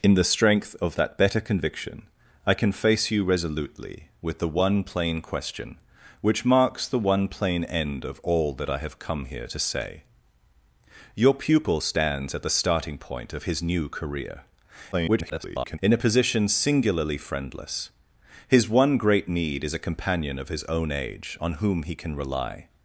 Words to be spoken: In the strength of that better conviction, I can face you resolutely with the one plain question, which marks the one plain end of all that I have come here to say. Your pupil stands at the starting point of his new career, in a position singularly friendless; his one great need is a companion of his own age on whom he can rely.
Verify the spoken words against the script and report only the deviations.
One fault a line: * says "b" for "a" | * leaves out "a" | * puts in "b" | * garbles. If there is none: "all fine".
* garbles